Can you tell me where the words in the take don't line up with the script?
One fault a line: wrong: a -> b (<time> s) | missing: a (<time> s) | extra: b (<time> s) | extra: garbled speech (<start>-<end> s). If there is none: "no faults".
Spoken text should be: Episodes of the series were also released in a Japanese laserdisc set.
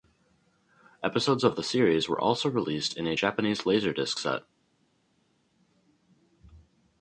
no faults